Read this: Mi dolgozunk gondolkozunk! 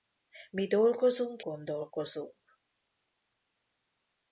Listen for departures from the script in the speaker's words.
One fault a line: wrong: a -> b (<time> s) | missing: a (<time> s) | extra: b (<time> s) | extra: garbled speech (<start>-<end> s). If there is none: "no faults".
no faults